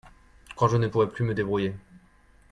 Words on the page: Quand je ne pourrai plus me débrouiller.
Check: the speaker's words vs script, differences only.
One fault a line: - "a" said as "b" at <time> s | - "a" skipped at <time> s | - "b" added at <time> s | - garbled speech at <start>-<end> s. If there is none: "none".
none